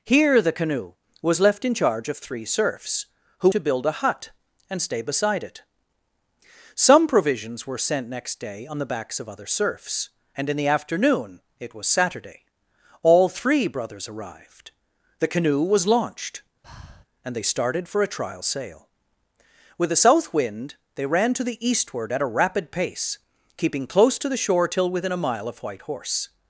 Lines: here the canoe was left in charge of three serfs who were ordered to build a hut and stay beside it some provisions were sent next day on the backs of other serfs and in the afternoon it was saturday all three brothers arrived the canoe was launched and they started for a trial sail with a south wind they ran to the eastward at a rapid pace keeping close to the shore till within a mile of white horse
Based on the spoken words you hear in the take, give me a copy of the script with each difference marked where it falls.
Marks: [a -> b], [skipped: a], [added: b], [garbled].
here the canoe was left in charge of three serfs who [skipped: were ordered] to build a hut and stay beside it some provisions were sent next day on the backs of other serfs and in the afternoon it was saturday all three brothers arrived the canoe was launched and they started for a trial sail with a south wind they ran to the eastward at a rapid pace keeping close to the shore till within a mile of white horse